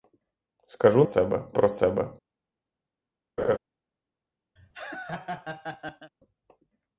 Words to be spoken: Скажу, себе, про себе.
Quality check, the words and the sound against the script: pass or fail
fail